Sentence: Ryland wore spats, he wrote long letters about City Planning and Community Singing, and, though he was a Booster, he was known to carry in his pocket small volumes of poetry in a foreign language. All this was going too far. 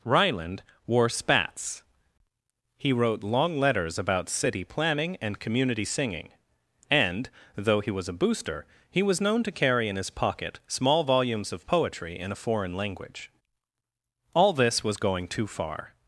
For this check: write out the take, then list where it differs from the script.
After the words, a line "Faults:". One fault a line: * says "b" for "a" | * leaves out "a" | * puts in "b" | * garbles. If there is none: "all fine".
Ryland wore spats, he wrote long letters about City Planning and Community Singing, and, though he was a Booster, he was known to carry in his pocket small volumes of poetry in a foreign language. All this was going too far.
Faults:
all fine